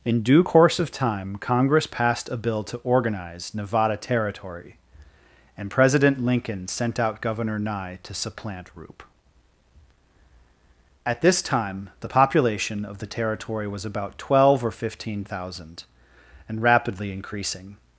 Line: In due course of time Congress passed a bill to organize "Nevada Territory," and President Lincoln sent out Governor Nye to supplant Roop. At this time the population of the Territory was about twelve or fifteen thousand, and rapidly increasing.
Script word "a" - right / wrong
right